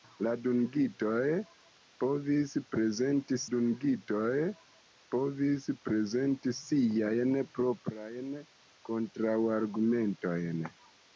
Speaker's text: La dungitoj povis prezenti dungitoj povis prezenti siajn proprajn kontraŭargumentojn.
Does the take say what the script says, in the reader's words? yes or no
yes